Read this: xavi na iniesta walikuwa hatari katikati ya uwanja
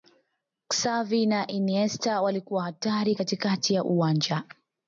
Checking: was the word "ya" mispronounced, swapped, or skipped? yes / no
no